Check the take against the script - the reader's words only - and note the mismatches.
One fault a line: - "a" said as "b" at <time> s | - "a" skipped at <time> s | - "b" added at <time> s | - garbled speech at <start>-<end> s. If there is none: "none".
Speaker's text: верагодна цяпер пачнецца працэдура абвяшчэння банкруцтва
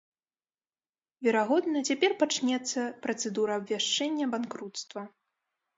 none